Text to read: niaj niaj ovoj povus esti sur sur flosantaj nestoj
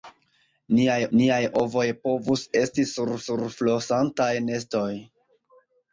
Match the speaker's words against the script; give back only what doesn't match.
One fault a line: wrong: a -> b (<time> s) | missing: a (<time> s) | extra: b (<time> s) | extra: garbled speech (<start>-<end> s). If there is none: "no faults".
no faults